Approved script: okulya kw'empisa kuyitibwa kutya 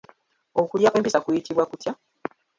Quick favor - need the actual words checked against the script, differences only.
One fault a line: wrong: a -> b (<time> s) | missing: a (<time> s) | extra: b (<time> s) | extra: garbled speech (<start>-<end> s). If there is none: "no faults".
no faults